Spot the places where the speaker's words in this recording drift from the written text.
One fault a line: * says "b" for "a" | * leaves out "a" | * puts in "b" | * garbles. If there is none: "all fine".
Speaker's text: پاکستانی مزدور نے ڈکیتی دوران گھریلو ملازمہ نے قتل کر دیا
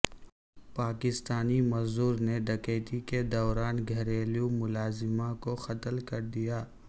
* puts in "کے"
* says "کو" for "نے"